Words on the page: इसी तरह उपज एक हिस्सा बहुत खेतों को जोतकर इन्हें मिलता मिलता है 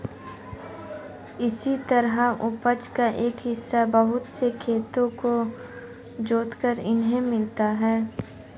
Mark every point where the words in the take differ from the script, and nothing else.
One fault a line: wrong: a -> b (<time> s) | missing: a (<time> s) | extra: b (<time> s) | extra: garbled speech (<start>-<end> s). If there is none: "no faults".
extra: का (3.0 s)
extra: से (4.3 s)
missing: मिलता (7.6 s)